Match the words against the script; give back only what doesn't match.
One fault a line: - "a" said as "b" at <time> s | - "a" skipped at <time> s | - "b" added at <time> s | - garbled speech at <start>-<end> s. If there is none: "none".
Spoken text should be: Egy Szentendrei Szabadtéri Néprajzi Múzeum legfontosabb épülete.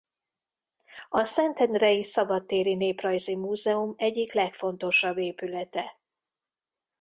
- "Egy" said as "A" at 1.1 s
- "egyik" added at 4.0 s